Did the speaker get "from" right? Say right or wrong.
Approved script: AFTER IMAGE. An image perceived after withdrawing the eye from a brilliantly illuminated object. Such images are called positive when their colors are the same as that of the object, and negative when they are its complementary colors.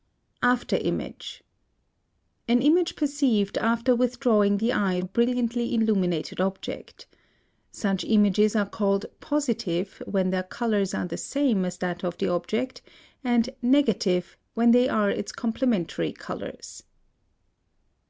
wrong